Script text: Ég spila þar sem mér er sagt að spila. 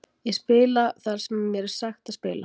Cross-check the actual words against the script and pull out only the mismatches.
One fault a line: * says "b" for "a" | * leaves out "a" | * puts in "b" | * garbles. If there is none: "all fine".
all fine